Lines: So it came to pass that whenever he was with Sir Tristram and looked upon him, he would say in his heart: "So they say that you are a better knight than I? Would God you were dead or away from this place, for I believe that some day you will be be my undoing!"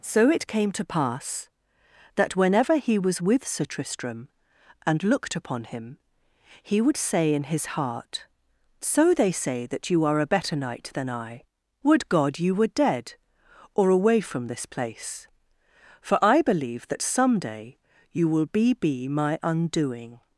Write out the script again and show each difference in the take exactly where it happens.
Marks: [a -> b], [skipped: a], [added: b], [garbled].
So it came to pass that whenever he was with Sir Tristram and looked upon him, he would say in his heart: "So they say that you are a better knight than I? Would God you were dead or away from this place, for I believe that some day you will be be my undoing!"